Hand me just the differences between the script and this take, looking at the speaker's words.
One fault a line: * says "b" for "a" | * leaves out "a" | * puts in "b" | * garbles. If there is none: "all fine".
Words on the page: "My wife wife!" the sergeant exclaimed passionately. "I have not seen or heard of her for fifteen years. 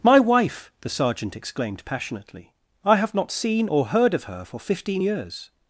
* leaves out "wife"